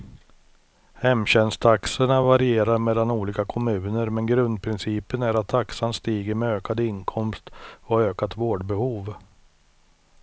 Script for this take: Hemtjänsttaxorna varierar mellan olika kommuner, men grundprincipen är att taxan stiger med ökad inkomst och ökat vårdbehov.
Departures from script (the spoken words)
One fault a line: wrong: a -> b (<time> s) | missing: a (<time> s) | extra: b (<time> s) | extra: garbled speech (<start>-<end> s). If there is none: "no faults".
no faults